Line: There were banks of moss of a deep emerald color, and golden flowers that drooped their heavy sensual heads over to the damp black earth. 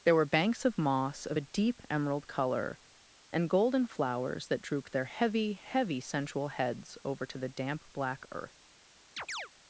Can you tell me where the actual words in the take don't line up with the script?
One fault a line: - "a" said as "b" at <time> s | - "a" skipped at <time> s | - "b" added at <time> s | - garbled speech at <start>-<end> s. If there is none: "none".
- "heavy" added at 5.5 s